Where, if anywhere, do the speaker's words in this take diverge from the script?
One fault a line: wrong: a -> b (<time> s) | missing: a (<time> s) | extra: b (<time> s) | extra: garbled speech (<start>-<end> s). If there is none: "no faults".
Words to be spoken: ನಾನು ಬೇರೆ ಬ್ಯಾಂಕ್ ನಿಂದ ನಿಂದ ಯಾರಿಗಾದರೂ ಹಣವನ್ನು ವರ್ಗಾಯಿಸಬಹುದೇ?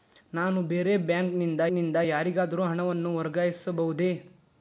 no faults